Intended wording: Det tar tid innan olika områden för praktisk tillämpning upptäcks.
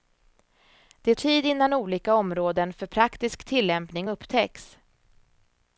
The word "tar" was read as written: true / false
false